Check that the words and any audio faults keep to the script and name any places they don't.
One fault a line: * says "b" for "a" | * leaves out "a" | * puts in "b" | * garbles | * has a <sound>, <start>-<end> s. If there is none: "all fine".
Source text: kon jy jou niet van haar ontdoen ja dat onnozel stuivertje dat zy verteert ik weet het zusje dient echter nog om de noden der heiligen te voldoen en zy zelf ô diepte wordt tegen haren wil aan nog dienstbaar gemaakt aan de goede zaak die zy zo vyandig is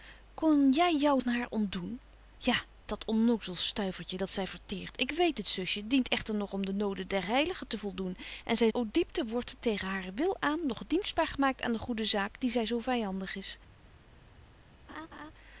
* leaves out "niet"
* leaves out "zelf"
* has a laugh, 14.9-15.3 s